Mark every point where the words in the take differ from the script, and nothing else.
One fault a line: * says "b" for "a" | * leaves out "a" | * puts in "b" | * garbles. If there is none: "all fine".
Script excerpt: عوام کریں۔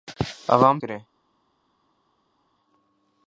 all fine